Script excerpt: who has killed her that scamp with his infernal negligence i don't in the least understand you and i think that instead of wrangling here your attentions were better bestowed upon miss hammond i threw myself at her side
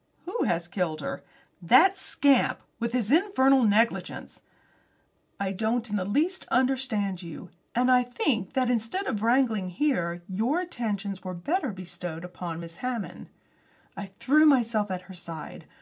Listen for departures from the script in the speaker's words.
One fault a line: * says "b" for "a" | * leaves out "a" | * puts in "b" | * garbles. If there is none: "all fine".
all fine